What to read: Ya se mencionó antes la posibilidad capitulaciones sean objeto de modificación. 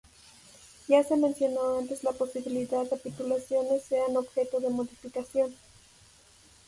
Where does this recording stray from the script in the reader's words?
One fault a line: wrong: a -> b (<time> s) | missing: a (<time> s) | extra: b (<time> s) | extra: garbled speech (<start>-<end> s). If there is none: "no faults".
no faults